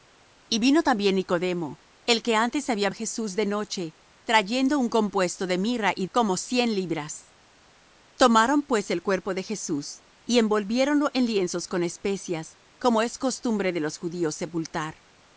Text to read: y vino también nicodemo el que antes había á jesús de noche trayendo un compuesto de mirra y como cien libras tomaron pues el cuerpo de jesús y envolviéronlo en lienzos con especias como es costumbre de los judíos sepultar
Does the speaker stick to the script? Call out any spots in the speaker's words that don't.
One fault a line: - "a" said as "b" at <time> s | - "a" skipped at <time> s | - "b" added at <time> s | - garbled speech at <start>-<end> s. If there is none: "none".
none